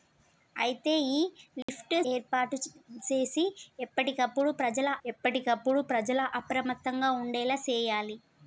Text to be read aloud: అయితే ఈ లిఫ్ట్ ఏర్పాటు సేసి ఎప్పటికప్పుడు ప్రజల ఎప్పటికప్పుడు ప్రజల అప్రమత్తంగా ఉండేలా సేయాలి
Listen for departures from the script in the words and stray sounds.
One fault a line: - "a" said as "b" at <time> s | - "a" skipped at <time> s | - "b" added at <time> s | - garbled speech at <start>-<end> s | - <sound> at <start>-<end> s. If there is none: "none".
- dropout at 1.6-1.7 s